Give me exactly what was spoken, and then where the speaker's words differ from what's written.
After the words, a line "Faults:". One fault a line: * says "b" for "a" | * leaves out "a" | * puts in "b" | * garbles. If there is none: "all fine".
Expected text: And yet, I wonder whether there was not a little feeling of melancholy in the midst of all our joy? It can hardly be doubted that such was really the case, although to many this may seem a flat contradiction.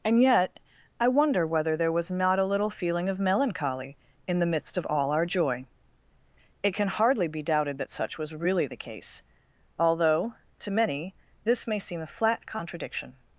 And yet, I wonder whether there was not a little feeling of melancholy in the midst of all our joy? It can hardly be doubted that such was really the case, although to many this may seem a flat contradiction.
Faults:
all fine